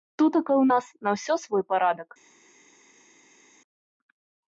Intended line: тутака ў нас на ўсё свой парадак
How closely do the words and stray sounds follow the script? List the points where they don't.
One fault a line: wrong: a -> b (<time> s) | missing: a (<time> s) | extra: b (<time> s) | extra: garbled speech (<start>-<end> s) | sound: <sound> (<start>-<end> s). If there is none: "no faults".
no faults